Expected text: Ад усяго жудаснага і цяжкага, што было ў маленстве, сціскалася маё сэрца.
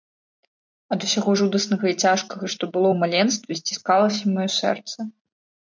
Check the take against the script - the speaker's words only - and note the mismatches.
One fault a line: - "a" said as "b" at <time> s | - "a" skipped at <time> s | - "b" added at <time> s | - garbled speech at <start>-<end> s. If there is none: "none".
none